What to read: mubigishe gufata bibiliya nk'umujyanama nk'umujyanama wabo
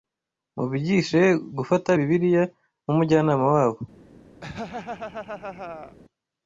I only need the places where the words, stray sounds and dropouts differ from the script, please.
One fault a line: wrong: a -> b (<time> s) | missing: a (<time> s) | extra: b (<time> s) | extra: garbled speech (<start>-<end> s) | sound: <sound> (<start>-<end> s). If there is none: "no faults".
missing: nk'umujyanama (3.4 s)
sound: laugh (4.4-6.0 s)